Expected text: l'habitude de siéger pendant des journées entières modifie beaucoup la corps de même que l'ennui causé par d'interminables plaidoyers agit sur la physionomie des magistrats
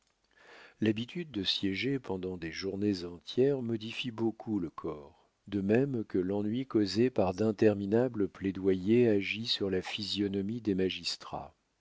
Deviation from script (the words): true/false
true